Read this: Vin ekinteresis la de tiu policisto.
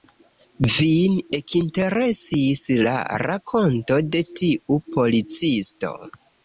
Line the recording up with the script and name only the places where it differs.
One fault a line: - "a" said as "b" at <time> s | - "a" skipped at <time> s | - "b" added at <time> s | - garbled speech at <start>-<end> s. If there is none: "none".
- "rakonto" added at 3.3 s